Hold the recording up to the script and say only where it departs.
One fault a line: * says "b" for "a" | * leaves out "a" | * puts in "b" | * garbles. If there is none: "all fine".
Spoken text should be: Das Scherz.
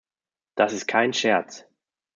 * puts in "ist kein"